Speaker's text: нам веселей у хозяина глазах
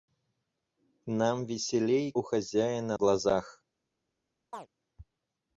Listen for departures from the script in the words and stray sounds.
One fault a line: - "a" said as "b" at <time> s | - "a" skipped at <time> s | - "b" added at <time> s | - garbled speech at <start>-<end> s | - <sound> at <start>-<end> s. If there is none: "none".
- chirp at 4.5-4.7 s